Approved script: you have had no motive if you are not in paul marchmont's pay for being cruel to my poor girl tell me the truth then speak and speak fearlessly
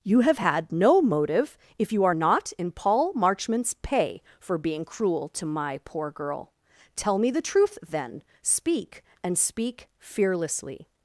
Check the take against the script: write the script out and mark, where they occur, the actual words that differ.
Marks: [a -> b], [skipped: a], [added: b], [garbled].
you have had no motive if you are not in paul marchmont's pay for being cruel to my poor girl tell me the truth then speak and speak fearlessly